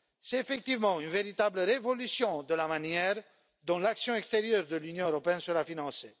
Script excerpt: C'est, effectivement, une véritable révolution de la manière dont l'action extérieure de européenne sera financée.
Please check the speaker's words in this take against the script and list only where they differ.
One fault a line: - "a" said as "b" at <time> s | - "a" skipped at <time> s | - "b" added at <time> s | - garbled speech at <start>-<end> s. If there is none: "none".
- "l'Union" added at 4.8 s